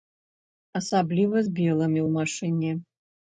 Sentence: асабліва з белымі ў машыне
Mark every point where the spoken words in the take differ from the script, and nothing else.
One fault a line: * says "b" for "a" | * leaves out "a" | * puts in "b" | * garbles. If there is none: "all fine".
all fine